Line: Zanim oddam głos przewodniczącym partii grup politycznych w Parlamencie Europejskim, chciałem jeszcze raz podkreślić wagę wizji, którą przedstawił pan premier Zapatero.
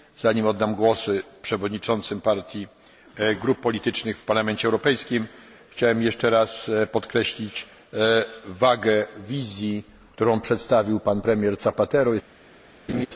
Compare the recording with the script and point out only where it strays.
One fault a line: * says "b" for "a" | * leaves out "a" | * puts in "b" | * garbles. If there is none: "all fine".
all fine